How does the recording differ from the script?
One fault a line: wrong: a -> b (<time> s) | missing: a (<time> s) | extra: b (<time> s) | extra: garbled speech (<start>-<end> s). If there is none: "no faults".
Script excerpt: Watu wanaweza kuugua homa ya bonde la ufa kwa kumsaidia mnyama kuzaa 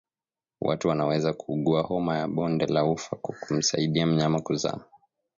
no faults